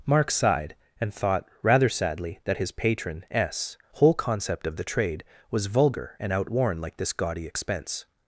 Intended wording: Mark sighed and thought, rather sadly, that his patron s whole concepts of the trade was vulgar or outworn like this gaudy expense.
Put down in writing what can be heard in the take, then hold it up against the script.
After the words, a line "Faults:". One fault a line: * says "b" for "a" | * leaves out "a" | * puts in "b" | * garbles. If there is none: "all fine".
Mark sighed and thought, rather sadly, that his patron s whole concept of the trade was vulgar and outworn like this gaudy expense.
Faults:
* says "concept" for "concepts"
* says "and" for "or"